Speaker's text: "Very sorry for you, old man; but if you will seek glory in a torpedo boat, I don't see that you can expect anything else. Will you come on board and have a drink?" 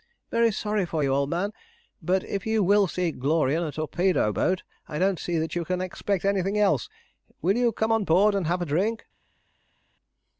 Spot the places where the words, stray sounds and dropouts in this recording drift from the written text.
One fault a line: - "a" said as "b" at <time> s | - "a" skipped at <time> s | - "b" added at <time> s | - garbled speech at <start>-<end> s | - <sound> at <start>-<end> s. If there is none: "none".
none